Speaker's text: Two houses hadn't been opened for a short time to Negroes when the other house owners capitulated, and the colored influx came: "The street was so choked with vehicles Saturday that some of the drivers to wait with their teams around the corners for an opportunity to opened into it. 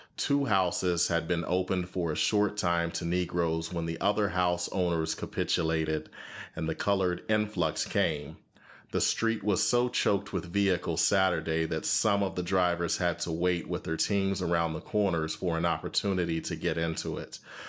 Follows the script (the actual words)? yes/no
no